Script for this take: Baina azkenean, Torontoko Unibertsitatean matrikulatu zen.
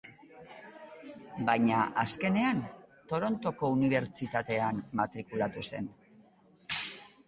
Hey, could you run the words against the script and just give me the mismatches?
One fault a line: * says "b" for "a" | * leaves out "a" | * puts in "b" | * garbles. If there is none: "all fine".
all fine